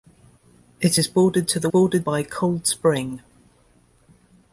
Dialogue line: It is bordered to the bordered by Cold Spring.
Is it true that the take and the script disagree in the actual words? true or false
false